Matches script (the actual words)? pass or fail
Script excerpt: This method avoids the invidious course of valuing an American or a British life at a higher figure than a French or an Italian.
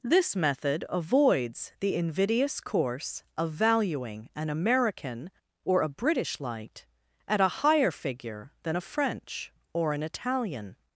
fail